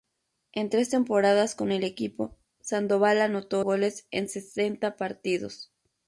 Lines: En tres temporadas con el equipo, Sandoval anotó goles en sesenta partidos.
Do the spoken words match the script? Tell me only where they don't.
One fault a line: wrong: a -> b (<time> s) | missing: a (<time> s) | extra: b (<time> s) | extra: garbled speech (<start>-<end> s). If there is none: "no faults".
no faults